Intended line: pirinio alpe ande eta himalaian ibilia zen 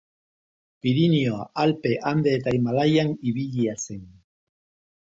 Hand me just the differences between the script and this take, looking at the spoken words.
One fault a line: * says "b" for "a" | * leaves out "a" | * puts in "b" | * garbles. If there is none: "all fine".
all fine